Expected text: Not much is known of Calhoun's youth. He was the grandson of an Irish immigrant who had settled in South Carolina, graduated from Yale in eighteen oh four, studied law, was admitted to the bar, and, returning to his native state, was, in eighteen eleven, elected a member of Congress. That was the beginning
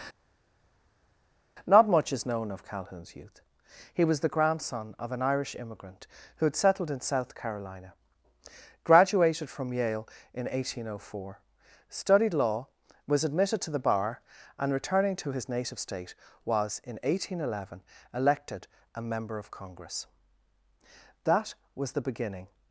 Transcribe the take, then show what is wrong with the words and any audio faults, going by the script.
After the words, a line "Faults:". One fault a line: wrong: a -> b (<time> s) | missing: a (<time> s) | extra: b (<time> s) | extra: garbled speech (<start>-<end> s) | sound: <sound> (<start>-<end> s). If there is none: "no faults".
Not much is known of Calhoun's youth. He was the grandson of an Irish immigrant who had settled in South Carolina, graduated from Yale in eighteen oh four, studied law, was admitted to the bar, and, returning to his native state, was, in eighteen eleven, elected a member of Congress. That was the beginning
Faults:
no faults